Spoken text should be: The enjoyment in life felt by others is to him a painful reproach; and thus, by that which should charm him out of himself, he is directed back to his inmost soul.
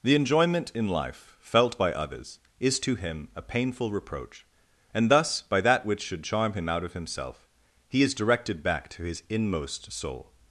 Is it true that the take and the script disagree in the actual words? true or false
false